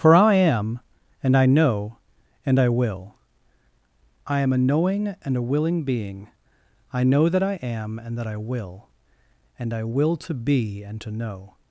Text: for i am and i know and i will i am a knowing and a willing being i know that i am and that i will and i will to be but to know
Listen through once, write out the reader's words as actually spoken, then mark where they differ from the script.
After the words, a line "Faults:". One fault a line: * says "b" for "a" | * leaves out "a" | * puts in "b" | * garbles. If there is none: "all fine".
for i am and i know and i will i am a knowing and a willing being i know that i am and that i will and i will to be and to know
Faults:
* says "and" for "but"